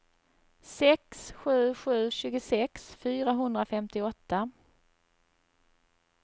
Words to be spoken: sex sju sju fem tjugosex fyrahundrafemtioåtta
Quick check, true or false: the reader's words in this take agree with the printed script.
false